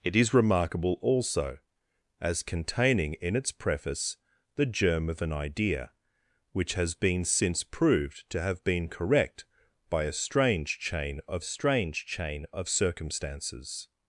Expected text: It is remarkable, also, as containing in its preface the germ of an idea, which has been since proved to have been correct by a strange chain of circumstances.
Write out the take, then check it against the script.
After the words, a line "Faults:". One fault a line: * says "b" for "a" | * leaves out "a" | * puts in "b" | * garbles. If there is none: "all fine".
It is remarkable, also, as containing in its preface the germ of an idea, which has been since proved to have been correct by a strange chain of strange chain of circumstances.
Faults:
* puts in "strange chain of"